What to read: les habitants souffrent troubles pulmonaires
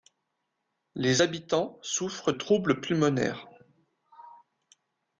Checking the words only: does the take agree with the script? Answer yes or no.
yes